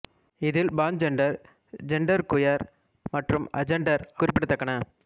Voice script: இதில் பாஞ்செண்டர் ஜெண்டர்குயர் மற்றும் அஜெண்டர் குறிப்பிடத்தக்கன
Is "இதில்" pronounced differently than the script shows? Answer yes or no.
no